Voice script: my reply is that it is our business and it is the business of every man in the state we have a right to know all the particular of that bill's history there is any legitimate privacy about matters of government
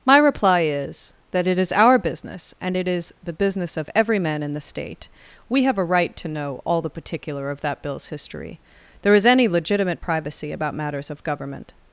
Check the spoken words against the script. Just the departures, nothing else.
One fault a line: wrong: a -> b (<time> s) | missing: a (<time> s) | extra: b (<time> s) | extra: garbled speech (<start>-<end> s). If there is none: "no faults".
no faults